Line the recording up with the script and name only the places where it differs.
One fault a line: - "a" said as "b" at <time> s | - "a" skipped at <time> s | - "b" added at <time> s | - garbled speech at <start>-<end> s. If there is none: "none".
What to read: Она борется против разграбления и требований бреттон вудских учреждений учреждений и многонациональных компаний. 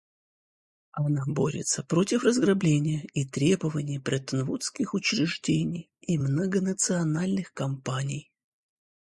- "учреждений" skipped at 5.9 s